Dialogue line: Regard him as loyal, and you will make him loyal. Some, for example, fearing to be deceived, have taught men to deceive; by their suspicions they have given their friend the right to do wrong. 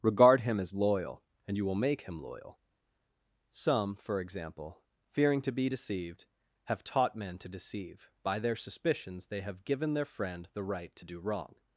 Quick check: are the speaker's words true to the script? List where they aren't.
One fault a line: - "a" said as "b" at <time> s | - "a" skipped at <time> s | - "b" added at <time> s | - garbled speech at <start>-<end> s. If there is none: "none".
none